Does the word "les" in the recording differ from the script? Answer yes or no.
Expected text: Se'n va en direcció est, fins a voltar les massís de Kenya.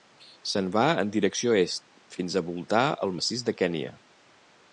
yes